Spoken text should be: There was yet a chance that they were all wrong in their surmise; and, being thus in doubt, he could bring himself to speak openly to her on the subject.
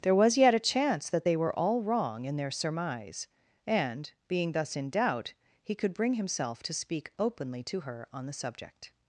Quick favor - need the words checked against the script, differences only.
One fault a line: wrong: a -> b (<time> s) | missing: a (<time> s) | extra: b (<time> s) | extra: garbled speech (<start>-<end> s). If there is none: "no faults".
no faults